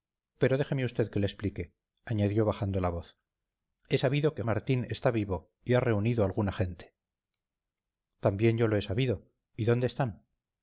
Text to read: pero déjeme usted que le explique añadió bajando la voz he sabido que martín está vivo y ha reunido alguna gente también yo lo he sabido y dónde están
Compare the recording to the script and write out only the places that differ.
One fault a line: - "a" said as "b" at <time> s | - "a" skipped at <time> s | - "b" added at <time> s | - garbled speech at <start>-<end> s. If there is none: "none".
none